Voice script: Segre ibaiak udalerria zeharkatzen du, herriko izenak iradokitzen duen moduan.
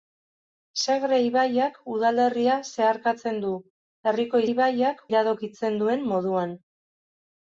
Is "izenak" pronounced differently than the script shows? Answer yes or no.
yes